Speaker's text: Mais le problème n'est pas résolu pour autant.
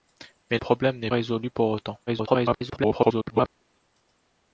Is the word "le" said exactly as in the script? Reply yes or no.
no